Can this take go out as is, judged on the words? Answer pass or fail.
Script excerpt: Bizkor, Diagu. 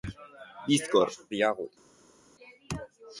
pass